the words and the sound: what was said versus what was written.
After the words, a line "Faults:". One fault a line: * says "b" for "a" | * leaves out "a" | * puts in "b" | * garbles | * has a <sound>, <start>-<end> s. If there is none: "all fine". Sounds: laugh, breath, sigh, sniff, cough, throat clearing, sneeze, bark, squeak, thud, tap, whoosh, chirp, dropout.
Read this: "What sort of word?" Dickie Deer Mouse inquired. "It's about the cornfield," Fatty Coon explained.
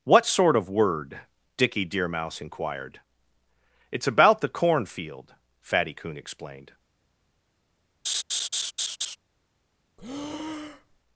"What sort of word?" Dickie Deer Mouse inquired. "It's about the cornfield," Fatty Coon explained.
Faults:
* has a laugh, 8.0-9.2 s
* has a breath, 10.0-11.0 s